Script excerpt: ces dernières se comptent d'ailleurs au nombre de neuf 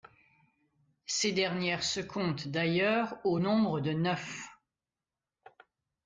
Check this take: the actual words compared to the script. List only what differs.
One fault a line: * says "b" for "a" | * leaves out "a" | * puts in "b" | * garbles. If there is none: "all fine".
all fine